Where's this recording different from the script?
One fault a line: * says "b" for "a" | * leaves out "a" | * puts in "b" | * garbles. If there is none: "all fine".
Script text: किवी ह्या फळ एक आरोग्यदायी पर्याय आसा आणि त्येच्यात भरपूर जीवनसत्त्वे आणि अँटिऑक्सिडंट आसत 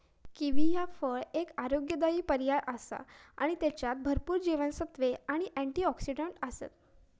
all fine